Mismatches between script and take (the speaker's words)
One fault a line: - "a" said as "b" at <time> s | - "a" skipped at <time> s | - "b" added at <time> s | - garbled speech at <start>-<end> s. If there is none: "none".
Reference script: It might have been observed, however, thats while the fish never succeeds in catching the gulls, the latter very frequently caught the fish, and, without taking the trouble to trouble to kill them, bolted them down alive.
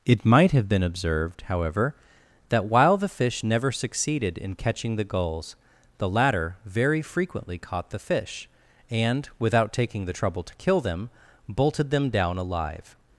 - "thats" said as "that" at 2.5 s
- "succeeds" said as "succeeded" at 3.7 s
- "trouble to" skipped at 10.6 s